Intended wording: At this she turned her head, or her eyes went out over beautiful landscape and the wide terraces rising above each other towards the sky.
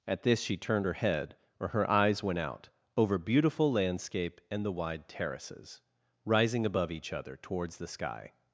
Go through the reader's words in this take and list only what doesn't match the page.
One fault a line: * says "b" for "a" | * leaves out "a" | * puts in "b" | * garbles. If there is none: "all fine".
all fine